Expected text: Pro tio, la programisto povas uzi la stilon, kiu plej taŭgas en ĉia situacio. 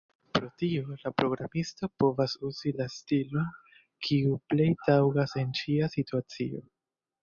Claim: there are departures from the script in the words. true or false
false